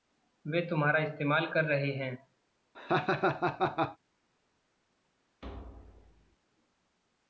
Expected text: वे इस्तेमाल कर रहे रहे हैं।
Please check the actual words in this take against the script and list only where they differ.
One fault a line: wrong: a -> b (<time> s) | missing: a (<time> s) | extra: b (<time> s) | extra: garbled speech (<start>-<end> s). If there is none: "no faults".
extra: तुम्हारा (0.6 s)
missing: रहे (1.9 s)